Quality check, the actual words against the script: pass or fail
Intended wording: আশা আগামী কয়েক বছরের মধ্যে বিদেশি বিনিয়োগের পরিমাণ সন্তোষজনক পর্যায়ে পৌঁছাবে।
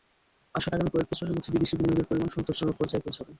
pass